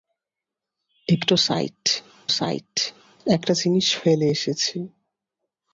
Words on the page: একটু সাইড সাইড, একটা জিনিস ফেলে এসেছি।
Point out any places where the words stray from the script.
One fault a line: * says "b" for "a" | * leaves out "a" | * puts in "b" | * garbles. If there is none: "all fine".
all fine